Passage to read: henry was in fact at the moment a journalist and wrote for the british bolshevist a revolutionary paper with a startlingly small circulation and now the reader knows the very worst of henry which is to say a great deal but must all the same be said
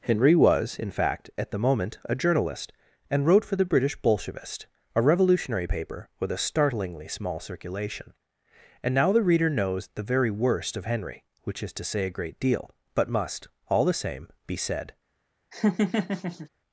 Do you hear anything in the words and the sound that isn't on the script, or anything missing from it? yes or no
yes